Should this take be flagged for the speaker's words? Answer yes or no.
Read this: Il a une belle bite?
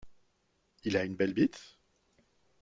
no